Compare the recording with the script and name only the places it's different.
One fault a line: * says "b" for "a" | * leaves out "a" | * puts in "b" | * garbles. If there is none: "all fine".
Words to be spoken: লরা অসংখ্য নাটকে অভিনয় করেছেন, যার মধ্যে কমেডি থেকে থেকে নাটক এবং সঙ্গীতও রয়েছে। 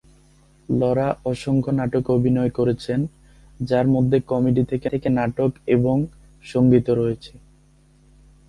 all fine